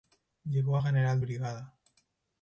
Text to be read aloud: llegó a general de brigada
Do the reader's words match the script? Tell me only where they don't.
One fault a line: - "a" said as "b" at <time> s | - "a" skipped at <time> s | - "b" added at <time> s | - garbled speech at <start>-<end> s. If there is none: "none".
- "de" skipped at 1.2 s